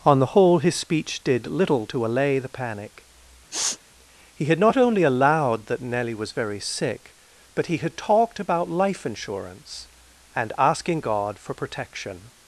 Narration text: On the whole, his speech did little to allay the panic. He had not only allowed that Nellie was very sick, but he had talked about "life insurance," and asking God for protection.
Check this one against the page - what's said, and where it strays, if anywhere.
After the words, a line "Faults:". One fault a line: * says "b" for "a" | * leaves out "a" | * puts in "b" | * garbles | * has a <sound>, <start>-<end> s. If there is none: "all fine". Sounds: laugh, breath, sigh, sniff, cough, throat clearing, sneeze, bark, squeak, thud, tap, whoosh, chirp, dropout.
On the whole, his speech did little to allay the panic. He had not only allowed that Nellie was very sick, but he had talked about "life insurance," and asking God for protection.
Faults:
* has a sniff, 3.5-3.8 s